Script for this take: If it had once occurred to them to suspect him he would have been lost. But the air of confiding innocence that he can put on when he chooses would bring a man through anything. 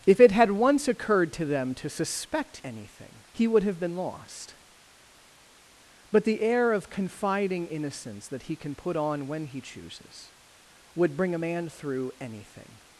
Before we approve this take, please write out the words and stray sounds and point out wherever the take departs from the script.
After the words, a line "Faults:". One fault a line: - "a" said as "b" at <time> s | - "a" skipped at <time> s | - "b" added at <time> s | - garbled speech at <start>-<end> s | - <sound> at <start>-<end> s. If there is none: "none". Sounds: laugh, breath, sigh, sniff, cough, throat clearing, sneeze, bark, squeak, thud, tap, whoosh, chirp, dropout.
If it had once occurred to them to suspect anything he would have been lost. But the air of confiding innocence that he can put on when he chooses would bring a man through anything.
Faults:
- "him" said as "anything" at 2.6 s